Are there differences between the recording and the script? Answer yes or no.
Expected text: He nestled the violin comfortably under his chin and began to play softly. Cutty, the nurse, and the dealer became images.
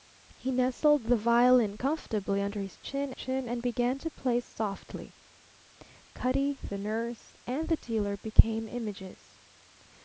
yes